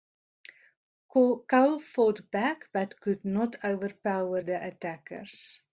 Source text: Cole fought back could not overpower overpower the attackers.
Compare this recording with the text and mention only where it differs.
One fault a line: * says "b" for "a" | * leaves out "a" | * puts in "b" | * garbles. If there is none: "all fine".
* puts in "but"
* leaves out "overpower"